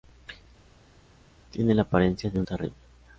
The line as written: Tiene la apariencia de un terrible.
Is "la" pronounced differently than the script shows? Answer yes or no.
no